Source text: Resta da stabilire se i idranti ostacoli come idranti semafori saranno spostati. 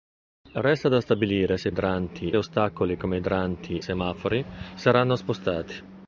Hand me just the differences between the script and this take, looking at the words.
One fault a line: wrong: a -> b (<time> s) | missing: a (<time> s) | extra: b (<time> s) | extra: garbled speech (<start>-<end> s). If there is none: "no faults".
no faults